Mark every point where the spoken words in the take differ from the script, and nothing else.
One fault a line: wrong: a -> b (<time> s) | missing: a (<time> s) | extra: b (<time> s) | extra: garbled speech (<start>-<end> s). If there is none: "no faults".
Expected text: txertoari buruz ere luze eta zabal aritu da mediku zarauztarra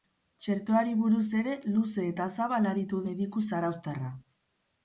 missing: da (3.0 s)